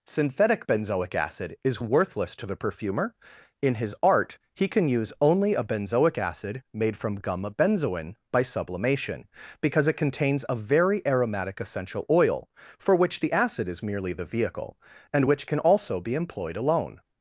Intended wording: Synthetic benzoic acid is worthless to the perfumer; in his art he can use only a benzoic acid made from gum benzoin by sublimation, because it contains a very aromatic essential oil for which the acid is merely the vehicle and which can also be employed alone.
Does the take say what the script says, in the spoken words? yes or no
yes